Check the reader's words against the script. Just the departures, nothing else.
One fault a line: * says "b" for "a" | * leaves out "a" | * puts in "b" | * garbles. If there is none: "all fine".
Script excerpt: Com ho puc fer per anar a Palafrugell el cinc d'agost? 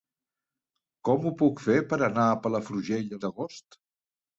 * leaves out "cinc"